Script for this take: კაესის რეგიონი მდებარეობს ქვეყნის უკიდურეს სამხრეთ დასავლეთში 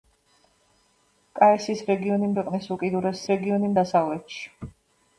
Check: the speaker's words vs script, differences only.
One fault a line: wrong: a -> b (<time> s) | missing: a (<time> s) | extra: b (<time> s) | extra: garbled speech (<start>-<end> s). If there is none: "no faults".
missing: მდებარეობს (2.3 s)
wrong: სამხრეთ -> რეგიონი (3.3 s)